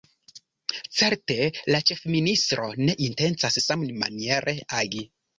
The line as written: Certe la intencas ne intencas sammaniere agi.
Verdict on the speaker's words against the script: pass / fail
fail